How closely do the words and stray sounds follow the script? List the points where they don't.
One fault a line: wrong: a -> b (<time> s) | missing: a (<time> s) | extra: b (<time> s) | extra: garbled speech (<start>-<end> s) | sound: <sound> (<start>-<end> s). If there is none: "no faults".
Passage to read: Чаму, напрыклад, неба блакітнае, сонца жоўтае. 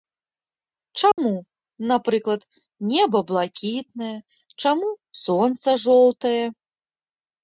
sound: dropout (1.1-1.2 s)
extra: чаму (4.6 s)